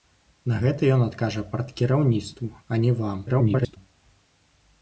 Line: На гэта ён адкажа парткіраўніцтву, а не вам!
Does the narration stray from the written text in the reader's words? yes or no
yes